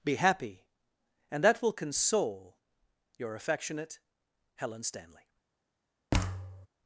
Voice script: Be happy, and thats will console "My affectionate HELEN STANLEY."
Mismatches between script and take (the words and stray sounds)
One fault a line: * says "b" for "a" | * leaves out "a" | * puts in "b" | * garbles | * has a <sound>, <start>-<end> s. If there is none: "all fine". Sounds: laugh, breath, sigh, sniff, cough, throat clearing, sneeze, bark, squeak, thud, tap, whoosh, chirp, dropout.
* says "that" for "thats"
* says "Your" for "My"
* has a thud, 6.1-6.7 s